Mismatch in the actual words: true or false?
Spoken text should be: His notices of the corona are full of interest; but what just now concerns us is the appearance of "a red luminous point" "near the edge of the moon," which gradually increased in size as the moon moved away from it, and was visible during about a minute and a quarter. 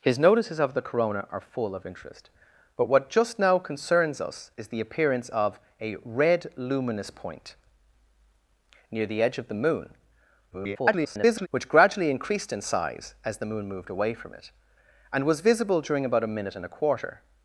true